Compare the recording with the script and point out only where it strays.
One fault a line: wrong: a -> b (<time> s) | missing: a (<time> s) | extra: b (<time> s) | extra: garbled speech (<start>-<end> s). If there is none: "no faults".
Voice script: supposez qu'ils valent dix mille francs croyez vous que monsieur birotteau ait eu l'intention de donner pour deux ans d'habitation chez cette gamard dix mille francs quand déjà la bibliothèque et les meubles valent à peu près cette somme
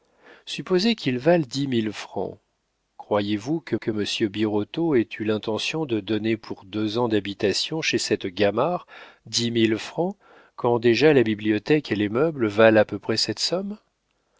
extra: que (3.7 s)